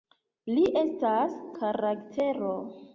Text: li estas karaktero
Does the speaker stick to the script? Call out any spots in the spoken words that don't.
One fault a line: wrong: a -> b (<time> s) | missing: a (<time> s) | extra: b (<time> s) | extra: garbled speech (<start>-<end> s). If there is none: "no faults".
no faults